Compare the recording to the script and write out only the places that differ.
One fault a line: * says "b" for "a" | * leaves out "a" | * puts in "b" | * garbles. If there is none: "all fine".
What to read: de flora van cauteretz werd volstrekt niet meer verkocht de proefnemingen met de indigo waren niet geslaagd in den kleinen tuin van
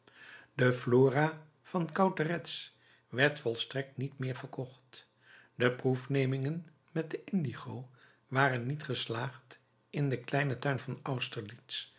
all fine